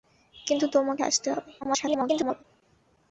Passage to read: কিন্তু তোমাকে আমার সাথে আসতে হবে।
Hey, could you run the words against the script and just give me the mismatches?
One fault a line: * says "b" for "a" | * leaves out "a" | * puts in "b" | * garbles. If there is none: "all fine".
* leaves out "আমার সাথে"
* garbles